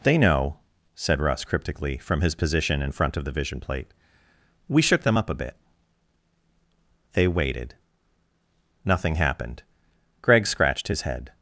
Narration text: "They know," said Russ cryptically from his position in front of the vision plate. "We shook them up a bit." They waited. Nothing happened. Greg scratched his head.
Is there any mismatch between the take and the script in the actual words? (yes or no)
no